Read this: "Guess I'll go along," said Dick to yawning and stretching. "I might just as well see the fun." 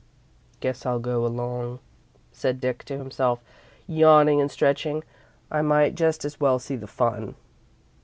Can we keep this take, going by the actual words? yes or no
no